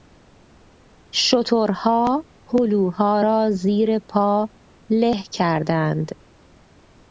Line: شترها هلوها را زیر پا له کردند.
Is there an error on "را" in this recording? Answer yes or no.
no